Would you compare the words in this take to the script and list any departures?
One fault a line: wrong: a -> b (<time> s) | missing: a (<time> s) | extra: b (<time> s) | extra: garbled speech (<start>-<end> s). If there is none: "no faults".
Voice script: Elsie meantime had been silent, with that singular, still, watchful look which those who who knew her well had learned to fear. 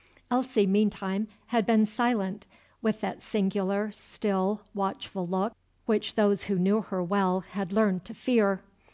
missing: who (6.6 s)